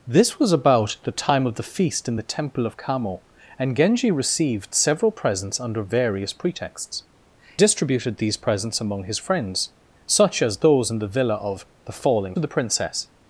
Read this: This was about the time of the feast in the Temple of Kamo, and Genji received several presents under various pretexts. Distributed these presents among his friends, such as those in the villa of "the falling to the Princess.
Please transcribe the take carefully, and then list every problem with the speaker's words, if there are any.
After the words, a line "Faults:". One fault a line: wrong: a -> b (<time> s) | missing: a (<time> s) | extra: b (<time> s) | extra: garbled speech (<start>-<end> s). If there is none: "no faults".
This was about the time of the feast in the Temple of Kamo, and Genji received several presents under various pretexts. Distributed these presents among his friends, such as those in the villa of "the falling to the Princess.
Faults:
no faults